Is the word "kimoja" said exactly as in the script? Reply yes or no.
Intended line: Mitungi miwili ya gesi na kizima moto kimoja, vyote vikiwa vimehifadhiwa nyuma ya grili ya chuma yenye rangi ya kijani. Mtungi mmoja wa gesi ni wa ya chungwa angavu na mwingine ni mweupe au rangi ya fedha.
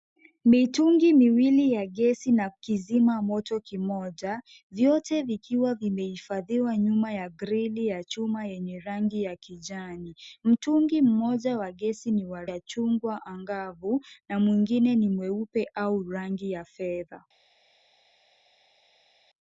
yes